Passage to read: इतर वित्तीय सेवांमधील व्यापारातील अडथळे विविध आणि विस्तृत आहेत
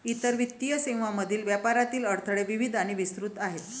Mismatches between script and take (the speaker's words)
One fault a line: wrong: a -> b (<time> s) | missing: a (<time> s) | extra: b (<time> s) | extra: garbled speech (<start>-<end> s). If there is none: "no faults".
no faults